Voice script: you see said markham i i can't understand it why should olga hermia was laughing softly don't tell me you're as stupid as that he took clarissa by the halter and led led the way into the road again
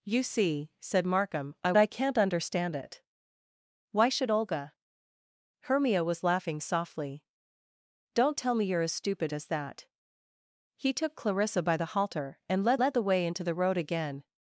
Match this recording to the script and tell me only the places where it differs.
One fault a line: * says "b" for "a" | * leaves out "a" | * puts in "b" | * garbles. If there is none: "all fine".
all fine